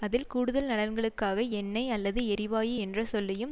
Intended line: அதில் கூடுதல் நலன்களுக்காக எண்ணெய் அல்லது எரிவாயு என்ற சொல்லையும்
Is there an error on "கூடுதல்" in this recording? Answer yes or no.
no